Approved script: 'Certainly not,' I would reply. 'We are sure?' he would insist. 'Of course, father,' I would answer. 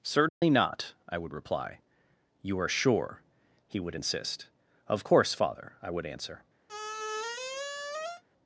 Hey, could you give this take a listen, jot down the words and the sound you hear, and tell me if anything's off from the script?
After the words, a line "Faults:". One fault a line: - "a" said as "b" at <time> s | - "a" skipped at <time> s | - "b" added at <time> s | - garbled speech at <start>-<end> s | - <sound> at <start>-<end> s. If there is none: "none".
'Certainly not,' I would reply. 'You are sure?' he would insist. 'Of course, father,' I would answer.
Faults:
- dropout at 0.3-0.4 s
- "We" said as "You" at 2.4 s
- squeak at 6.7-8.2 s